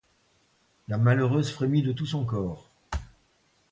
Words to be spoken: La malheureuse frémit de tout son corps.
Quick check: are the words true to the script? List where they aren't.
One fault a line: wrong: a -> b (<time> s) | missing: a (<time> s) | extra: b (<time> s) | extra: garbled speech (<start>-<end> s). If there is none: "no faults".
no faults